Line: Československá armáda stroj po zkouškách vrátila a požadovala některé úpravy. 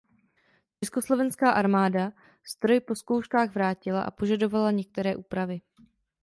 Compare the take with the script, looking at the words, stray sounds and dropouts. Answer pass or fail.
pass